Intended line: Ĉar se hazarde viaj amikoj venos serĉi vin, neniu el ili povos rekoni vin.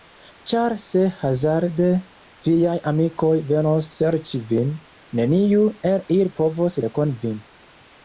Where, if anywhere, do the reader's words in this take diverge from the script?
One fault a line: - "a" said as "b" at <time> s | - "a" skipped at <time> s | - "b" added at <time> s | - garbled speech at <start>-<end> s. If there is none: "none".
none